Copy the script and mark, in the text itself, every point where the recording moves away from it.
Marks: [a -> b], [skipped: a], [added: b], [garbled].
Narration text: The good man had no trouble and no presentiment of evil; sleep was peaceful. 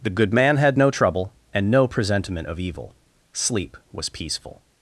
The good man had no trouble and no presentiment of evil; sleep was peaceful.